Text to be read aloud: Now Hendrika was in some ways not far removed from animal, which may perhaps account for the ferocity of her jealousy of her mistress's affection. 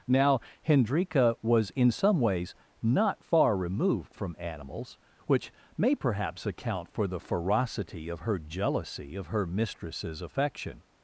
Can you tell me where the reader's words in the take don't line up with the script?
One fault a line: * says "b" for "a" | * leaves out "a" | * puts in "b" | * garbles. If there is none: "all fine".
* says "animals" for "animal"